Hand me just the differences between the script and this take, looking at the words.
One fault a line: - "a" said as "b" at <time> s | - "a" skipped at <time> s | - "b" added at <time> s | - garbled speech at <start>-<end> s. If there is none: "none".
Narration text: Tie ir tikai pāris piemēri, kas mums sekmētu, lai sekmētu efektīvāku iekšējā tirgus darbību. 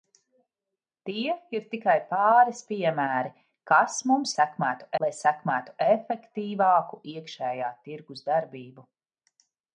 none